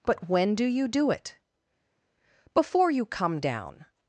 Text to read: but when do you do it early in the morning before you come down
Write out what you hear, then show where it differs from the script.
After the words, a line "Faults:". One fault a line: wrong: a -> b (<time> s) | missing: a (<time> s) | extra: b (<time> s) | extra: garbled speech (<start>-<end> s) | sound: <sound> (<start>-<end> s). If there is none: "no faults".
but when do you do it before you come down
Faults:
missing: early in the morning (1.4 s)